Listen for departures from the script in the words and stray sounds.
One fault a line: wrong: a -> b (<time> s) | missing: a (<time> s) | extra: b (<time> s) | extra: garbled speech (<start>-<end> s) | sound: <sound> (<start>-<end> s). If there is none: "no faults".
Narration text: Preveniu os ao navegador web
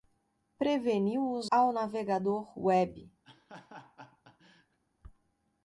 sound: laugh (3.2-4.8 s)